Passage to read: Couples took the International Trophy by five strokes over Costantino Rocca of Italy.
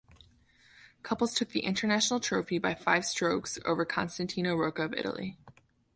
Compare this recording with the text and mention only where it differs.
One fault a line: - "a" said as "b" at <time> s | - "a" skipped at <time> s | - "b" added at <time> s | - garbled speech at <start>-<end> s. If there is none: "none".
none